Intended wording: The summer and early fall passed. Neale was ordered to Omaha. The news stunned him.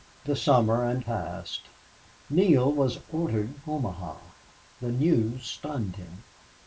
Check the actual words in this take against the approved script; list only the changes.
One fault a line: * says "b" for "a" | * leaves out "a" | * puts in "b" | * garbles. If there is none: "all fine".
* leaves out "early fall"
* leaves out "to"